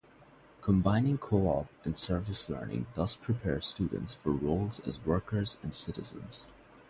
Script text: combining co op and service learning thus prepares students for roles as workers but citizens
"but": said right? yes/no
no